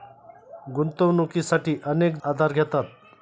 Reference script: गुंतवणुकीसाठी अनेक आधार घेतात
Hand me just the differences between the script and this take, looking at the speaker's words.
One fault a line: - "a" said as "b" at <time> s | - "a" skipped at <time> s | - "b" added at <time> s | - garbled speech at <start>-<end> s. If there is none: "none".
none